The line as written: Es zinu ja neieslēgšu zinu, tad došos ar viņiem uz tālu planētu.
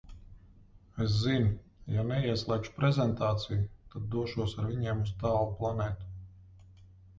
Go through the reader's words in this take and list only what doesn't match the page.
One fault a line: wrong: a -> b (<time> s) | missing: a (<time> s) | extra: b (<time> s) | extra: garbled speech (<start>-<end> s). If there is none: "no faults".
wrong: zinu -> prezentāciju (2.8 s)